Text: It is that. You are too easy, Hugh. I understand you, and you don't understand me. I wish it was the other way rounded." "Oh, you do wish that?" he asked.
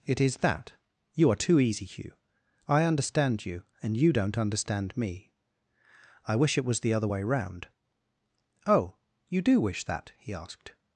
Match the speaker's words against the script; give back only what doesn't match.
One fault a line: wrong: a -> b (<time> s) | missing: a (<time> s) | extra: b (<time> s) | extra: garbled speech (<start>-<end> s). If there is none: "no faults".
wrong: rounded -> round (7.2 s)